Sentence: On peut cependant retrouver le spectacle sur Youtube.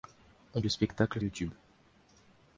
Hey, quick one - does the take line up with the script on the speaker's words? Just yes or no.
no